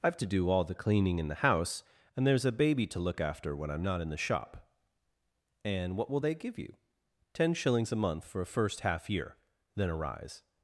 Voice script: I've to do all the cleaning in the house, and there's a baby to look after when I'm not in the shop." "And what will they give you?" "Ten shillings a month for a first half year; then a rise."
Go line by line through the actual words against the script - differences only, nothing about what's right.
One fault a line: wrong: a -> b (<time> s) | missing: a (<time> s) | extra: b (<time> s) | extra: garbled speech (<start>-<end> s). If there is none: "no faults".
no faults